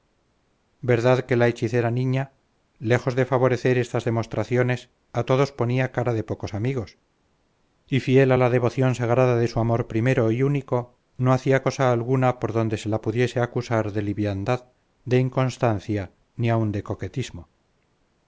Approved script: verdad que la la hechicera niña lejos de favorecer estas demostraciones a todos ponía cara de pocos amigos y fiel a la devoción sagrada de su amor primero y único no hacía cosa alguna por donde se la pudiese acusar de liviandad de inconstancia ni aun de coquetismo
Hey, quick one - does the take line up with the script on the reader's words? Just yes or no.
no